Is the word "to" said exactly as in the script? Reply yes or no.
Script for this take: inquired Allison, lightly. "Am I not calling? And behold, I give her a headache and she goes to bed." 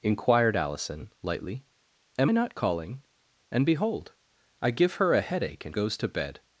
yes